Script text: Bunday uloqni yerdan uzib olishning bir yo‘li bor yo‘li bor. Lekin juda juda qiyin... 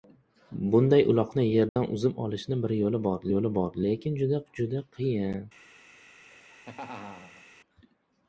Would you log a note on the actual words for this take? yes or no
no